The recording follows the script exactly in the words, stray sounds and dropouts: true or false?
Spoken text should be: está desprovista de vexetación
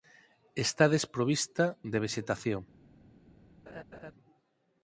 false